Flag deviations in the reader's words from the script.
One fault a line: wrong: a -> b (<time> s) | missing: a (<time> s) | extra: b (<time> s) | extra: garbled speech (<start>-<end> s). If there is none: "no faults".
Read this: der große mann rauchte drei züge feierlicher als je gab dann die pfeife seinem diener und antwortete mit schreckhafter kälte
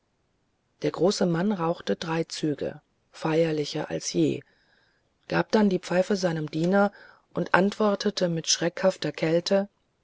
no faults